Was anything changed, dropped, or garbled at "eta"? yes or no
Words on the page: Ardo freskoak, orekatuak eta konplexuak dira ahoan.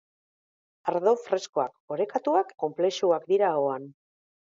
yes